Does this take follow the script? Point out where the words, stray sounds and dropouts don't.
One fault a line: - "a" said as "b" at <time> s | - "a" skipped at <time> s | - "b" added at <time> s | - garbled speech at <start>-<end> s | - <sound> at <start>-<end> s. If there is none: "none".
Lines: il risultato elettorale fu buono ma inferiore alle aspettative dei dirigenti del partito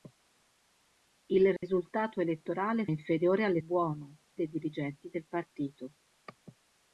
- dropout at 1.6-1.6 s
- "fu buono ma" skipped at 2.9 s
- "aspettative" said as "buono" at 3.6 s